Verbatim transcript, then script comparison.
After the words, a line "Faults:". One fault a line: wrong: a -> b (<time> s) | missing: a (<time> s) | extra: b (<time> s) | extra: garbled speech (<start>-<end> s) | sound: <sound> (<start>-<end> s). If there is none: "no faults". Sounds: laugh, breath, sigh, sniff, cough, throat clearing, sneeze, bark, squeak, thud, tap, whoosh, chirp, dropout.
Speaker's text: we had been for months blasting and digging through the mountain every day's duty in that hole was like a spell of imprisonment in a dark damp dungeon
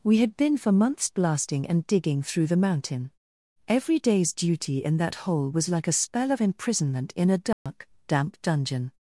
we had been for months blasting and digging through the mountain every day's duty in that hole was like a spell of imprisonment in a dark damp dungeon
Faults:
sound: dropout (7.5-7.7 s)